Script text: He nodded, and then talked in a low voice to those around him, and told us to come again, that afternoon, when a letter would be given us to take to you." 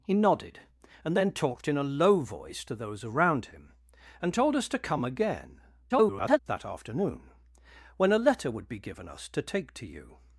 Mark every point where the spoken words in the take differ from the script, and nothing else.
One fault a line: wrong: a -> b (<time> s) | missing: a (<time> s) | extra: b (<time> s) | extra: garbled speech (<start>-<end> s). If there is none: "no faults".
extra: garbled speech (5.9-6.4 s)